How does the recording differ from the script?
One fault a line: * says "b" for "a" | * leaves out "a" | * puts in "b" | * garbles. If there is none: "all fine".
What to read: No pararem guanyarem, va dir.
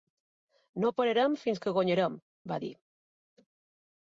* puts in "fins que"